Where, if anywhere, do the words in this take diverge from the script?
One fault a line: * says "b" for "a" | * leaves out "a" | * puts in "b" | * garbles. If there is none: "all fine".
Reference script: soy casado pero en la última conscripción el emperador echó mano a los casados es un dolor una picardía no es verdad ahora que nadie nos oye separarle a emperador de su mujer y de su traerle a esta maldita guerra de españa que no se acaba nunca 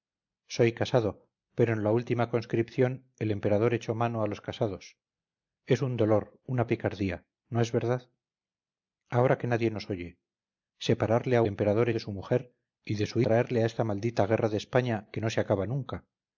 all fine